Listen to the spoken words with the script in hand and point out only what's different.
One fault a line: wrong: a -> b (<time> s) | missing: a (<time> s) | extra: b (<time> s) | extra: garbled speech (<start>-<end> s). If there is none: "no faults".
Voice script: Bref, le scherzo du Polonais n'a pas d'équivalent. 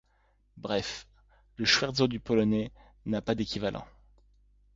no faults